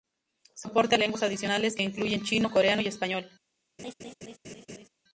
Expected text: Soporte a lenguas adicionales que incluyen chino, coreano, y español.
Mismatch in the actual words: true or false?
false